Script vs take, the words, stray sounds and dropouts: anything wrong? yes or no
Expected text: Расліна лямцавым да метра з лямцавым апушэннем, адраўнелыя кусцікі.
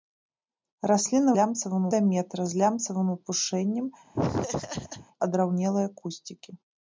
yes